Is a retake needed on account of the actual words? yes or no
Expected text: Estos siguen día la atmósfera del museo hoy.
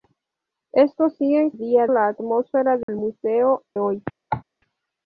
no